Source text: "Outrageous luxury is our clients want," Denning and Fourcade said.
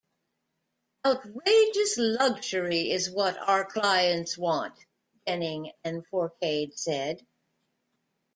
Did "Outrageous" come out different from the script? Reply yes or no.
no